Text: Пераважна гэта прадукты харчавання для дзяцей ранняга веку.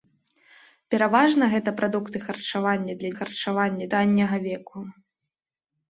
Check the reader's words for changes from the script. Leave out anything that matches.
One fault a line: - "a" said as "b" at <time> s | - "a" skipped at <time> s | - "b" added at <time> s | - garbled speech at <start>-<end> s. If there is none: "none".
- "дзяцей" said as "харчавання" at 3.2 s